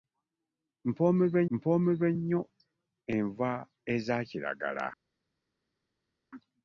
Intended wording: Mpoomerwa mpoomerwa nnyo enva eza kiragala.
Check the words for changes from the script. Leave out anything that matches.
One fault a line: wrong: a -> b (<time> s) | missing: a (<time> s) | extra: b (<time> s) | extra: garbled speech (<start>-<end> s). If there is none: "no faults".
no faults